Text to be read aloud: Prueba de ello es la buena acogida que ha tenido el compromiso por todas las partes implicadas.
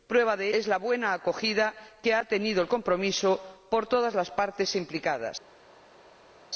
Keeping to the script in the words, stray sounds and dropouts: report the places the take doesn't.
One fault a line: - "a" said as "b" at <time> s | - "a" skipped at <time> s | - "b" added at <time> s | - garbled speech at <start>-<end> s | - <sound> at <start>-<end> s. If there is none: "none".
- "ello" skipped at 0.5 s